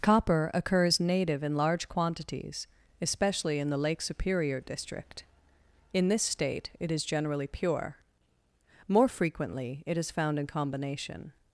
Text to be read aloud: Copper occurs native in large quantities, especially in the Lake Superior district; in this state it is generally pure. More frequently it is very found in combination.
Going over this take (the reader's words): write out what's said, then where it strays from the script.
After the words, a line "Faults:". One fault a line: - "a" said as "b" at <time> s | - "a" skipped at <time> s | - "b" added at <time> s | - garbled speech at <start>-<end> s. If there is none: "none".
Copper occurs native in large quantities, especially in the Lake Superior district; in this state it is generally pure. More frequently it is found in combination.
Faults:
- "very" skipped at 10.1 s